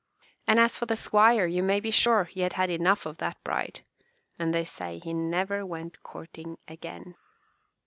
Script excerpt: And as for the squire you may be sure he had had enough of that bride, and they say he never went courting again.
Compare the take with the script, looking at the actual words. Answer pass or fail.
pass